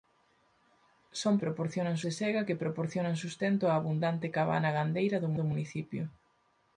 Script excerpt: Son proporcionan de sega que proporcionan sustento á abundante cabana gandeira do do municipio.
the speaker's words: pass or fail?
pass